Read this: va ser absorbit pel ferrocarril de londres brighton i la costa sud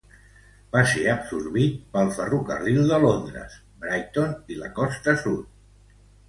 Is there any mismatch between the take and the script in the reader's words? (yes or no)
no